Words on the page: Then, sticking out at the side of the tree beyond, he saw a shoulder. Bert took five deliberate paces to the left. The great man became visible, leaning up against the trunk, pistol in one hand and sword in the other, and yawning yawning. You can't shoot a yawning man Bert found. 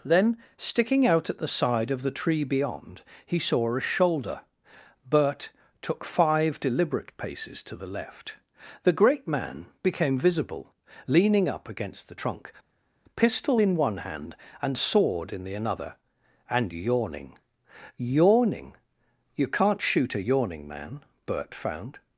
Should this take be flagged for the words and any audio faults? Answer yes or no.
yes